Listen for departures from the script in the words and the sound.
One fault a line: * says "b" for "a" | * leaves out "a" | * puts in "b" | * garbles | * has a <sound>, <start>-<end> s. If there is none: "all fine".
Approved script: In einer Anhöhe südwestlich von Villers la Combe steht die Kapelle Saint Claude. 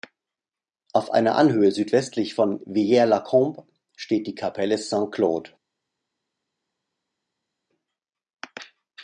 * says "Auf" for "In"